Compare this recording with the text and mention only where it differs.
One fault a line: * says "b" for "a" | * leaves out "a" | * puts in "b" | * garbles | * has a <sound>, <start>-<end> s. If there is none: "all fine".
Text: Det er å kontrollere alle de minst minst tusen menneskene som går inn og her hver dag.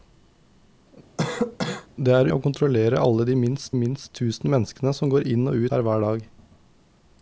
* has a cough, 1.2-1.9 s